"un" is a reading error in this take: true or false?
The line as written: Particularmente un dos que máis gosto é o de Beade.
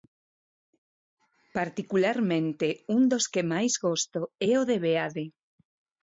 false